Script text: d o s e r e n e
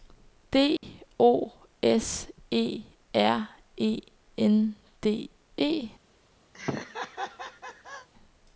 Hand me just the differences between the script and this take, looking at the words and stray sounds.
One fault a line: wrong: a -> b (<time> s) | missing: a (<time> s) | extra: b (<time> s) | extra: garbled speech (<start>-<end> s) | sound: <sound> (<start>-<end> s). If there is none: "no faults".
sound: dropout (0.8-0.8 s)
extra: d (5.0 s)
sound: laugh (6.5-8.1 s)